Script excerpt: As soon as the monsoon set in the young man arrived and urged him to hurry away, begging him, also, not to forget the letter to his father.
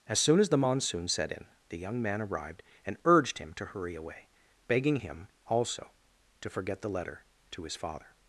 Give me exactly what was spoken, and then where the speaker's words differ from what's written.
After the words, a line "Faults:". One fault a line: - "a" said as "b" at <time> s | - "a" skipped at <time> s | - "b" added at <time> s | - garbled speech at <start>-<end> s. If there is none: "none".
As soon as the monsoon set in the young man arrived and urged him to hurry away, begging him, also, to forget the letter to his father.
Faults:
- "not" skipped at 5.9 s